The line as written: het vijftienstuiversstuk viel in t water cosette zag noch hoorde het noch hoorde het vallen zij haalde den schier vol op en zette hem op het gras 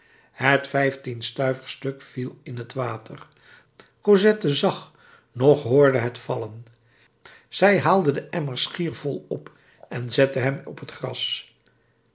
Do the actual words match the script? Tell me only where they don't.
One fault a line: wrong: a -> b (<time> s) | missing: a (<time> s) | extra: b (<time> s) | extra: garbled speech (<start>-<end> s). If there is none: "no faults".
missing: noch hoorde het (6.2 s)
extra: emmer (8.3 s)